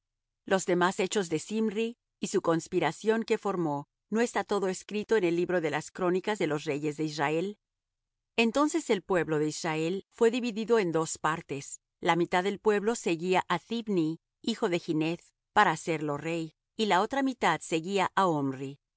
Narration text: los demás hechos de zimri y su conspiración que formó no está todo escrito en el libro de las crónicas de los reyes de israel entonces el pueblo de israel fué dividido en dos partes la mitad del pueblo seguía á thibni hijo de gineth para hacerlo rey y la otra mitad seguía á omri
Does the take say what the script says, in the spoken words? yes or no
yes